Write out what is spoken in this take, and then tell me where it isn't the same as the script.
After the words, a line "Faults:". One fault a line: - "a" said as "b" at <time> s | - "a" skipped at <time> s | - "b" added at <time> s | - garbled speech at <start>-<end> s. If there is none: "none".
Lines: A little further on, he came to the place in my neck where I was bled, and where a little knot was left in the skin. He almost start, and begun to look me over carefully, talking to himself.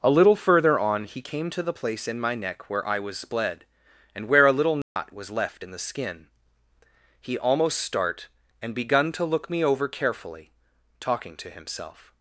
A little further on, he came to the place in my neck where I was bled, and where a little knot was left in the skin. He almost start, and begun to look me over carefully, talking to himself.
Faults:
none